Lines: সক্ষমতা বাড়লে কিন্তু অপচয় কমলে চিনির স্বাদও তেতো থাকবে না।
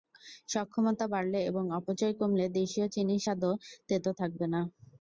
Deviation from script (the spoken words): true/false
true